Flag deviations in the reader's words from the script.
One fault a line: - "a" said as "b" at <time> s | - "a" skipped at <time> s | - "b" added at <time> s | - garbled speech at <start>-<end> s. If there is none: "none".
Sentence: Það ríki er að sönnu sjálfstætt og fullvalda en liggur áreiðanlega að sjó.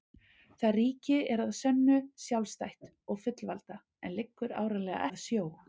none